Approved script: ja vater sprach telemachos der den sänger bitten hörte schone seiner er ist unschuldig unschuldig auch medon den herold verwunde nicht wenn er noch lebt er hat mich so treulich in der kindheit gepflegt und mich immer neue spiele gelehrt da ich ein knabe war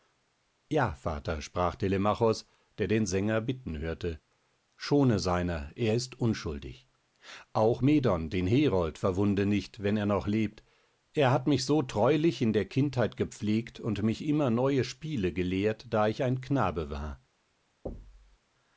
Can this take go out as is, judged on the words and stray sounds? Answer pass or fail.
fail